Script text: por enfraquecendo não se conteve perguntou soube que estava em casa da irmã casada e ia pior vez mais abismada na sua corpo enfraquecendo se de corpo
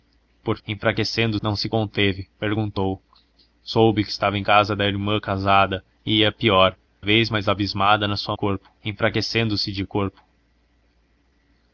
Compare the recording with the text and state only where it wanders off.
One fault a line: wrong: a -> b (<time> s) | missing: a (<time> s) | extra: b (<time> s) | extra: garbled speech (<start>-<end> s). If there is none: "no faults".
no faults